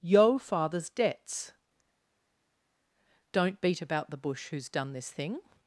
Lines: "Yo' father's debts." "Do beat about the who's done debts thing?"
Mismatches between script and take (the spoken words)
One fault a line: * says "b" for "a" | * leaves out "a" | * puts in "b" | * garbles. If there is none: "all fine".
* says "Don't" for "Do"
* puts in "bush"
* says "this" for "debts"